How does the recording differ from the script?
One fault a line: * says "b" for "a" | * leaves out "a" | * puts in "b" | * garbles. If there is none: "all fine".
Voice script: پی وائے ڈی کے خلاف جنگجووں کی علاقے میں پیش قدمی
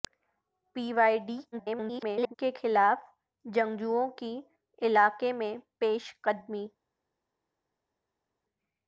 * garbles